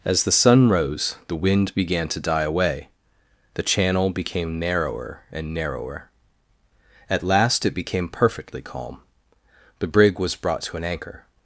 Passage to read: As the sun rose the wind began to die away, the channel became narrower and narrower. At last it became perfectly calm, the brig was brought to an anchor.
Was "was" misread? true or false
false